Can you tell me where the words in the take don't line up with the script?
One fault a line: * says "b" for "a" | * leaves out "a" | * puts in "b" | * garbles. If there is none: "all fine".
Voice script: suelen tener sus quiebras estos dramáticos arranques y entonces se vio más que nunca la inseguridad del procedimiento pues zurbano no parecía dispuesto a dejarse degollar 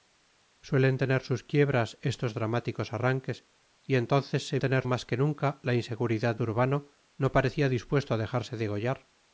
* says "tener" for "vio"
* leaves out "del procedimiento pues"